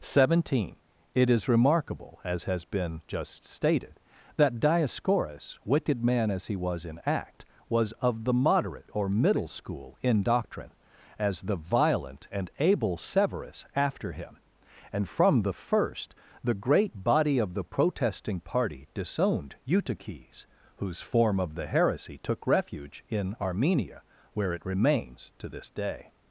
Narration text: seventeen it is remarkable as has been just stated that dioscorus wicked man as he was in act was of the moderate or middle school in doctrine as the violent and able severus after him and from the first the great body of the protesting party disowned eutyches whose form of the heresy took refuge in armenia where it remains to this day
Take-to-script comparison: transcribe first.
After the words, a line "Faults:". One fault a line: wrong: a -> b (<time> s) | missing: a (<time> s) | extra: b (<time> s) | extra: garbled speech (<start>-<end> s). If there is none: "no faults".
seventeen it is remarkable as has been just stated that dioscorus wicked man as he was in act was of the moderate or middle school in doctrine as the violent and able severus after him and from the first the great body of the protesting party disowned eutyches whose form of the heresy took refuge in armenia where it remains to this day
Faults:
no faults